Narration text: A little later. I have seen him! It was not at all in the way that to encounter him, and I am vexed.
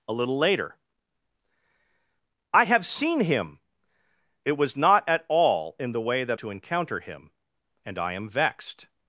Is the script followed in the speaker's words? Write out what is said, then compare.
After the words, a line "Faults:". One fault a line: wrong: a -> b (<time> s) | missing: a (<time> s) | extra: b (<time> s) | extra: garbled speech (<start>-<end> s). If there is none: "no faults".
A little later. I have seen him! It was not at all in the way that to encounter him, and I am vexed.
Faults:
no faults